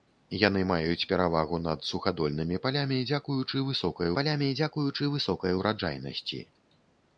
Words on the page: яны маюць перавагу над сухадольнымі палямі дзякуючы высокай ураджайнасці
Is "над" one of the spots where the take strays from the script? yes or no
no